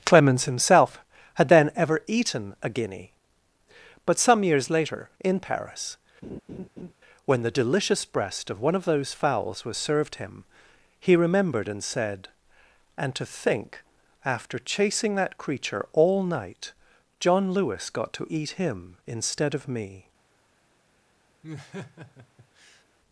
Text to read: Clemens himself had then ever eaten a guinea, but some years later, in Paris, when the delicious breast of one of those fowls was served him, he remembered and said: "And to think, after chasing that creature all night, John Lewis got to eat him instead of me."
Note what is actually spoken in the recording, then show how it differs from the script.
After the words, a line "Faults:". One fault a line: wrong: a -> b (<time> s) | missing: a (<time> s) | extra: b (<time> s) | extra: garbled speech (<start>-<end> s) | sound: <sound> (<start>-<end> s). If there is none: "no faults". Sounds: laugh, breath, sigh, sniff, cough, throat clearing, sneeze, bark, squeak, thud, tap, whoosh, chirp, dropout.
Clemens himself had then ever eaten a guinea, but some years later, in Paris, when the delicious breast of one of those fowls was served him, he remembered and said: "And to think, after chasing that creature all night, John Lewis got to eat him instead of me."
Faults:
sound: laugh (6.2-6.9 s)
sound: laugh (21.4-22.8 s)